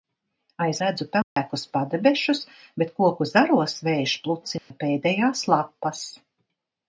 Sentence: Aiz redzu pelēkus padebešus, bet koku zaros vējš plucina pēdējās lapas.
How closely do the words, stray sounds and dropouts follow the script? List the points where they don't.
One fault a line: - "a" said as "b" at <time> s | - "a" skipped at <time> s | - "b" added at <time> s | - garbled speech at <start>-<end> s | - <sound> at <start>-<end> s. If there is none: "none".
- dropout at 1.2-1.4 s
- dropout at 4.6-4.7 s